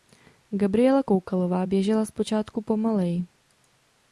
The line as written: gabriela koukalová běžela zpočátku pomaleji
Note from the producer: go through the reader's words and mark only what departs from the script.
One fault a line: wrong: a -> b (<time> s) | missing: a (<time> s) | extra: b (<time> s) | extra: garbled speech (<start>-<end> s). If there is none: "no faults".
no faults